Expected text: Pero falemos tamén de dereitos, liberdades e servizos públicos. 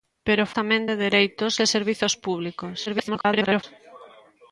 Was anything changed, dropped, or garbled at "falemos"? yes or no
yes